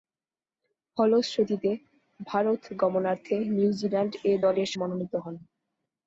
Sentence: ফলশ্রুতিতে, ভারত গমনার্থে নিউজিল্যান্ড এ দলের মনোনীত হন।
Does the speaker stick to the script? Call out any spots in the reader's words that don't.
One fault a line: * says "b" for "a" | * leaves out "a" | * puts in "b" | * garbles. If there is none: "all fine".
all fine